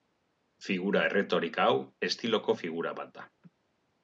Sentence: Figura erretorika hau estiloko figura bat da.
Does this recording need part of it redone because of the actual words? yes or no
no